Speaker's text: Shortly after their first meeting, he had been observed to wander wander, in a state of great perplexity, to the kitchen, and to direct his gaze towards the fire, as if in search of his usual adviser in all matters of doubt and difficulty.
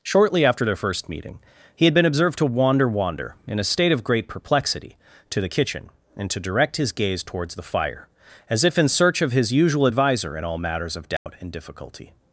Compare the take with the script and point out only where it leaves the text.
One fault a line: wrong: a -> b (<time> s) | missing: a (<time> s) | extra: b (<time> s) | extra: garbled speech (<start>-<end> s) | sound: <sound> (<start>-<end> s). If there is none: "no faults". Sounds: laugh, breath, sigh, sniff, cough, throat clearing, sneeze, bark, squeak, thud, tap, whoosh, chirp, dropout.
sound: dropout (11.2-11.3 s)